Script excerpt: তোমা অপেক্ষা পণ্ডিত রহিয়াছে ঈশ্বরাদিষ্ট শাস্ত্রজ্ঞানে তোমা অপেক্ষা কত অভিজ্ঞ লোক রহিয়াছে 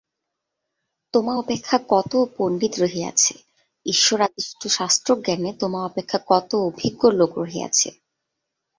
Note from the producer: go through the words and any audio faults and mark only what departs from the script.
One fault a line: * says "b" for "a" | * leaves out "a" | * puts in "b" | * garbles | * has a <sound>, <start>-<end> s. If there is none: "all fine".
* puts in "কত"